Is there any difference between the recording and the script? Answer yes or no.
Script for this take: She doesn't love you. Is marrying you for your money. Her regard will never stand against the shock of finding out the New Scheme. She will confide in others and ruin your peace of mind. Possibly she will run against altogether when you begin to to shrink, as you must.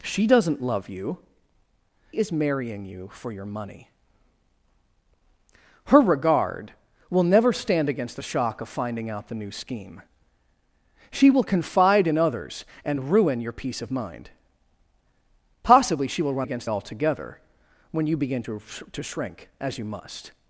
no